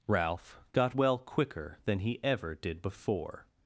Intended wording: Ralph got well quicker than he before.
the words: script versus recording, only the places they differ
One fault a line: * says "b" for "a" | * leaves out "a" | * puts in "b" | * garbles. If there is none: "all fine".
* puts in "ever did"